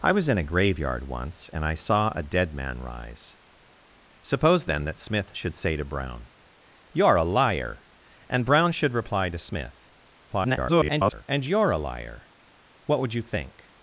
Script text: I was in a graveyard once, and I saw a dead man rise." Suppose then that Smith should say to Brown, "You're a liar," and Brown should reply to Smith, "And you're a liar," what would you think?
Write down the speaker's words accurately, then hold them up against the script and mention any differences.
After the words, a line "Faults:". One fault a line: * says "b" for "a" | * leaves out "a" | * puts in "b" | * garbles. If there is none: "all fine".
I was in a graveyard once, and I saw a dead man rise." Suppose then that Smith should say to Brown, "You're a liar," and Brown should reply to Smith, [garbled] "And you're a liar," what would you think?
Faults:
* garbles